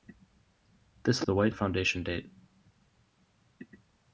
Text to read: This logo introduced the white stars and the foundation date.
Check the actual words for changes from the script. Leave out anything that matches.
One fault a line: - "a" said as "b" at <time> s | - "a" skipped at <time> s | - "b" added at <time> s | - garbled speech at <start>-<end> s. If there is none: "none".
- "logo introduced" skipped at 1.2 s
- "stars and" skipped at 1.5 s